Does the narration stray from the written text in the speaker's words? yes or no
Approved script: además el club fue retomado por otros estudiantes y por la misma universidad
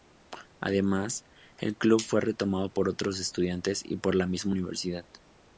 no